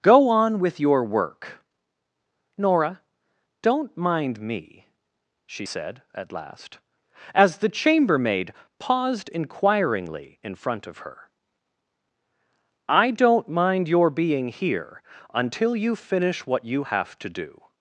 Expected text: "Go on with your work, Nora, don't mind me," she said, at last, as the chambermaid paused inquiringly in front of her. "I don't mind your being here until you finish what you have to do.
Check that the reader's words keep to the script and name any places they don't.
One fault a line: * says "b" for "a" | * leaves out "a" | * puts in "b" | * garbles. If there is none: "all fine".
all fine